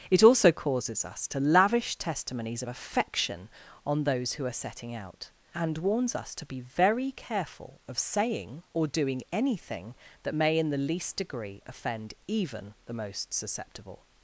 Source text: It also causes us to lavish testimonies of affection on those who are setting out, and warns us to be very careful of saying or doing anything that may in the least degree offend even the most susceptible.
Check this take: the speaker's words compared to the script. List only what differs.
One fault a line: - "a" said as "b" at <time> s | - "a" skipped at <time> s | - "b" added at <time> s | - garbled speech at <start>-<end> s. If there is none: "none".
none